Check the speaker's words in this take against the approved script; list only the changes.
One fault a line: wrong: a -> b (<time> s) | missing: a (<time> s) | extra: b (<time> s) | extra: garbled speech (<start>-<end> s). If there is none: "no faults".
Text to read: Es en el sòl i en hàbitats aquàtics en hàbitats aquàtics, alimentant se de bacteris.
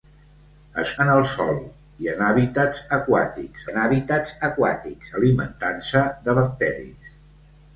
no faults